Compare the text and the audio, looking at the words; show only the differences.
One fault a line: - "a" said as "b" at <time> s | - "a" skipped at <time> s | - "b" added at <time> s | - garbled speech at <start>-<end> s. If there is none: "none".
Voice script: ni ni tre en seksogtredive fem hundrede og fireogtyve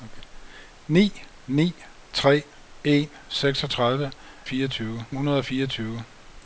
- "fem" said as "fireogtyve" at 4.4 s